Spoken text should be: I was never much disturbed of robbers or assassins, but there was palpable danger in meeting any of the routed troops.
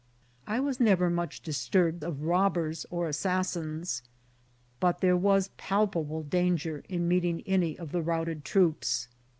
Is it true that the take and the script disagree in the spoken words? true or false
false